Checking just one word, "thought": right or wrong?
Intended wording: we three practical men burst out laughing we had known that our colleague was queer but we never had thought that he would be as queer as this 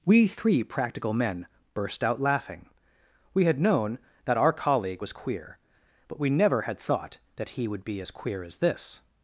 right